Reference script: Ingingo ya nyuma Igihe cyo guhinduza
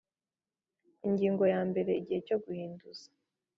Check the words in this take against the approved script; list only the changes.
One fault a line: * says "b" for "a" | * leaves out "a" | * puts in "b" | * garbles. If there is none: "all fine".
* says "mbere" for "nyuma"